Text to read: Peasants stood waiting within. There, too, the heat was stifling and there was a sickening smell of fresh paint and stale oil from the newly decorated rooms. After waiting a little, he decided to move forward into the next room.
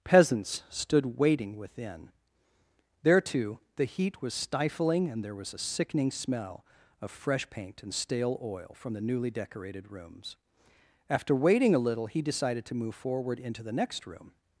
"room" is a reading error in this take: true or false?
false